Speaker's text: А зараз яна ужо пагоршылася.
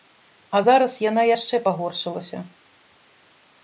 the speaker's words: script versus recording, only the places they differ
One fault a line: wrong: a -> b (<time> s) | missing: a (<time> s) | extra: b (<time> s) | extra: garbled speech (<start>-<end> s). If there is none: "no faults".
wrong: ужо -> яшчэ (1.3 s)